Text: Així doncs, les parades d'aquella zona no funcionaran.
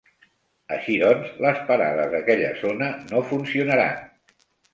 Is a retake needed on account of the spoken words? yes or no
no